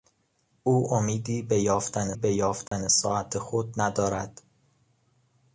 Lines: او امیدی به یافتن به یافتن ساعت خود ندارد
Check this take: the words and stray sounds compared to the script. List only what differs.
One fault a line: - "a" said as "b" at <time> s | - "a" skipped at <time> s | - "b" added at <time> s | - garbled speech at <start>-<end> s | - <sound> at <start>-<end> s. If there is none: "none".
- dropout at 2.7-2.7 s